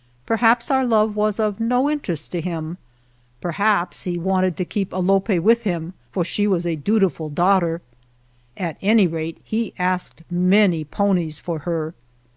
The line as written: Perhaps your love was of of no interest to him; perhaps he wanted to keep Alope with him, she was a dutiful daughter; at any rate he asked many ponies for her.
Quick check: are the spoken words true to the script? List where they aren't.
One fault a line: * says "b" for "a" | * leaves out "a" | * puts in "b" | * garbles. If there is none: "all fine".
* says "our" for "your"
* leaves out "of"
* puts in "for"